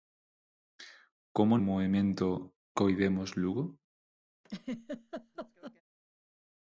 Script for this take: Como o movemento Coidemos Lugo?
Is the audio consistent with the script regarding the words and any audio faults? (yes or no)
no